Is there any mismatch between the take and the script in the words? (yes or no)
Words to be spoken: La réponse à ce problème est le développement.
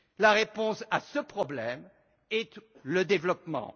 no